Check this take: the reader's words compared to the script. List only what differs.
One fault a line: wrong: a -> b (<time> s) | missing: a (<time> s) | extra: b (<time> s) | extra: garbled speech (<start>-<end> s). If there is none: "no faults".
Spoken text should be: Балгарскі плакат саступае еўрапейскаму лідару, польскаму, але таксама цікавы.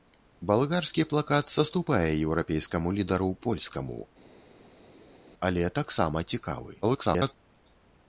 extra: garbled speech (6.8-7.3 s)